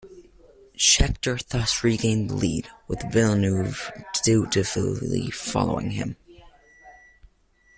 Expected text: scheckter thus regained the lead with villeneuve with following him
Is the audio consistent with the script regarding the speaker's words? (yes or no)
no